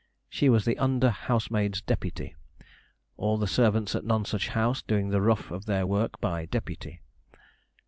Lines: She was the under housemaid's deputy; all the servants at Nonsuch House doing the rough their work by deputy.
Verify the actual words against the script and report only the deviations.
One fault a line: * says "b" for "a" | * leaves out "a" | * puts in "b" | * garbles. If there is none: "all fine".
* puts in "of"